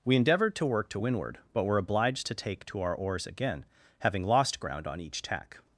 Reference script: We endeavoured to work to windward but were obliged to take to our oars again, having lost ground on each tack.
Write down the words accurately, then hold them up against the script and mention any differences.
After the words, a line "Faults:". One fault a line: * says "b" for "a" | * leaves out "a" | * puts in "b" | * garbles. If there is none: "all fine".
We endeavoured to work to windward but were obliged to take to our oars again, having lost ground on each tack.
Faults:
all fine